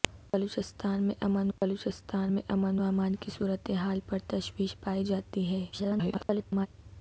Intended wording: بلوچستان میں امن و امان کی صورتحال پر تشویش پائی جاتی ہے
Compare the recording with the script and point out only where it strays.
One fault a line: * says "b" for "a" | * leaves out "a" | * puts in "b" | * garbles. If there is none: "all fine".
* puts in "بلوچستان میں امن"
* garbles